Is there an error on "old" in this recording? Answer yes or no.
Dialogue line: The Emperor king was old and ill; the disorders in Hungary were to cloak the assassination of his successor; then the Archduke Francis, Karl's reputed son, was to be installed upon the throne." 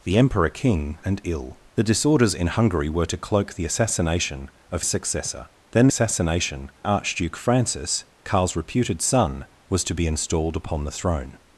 yes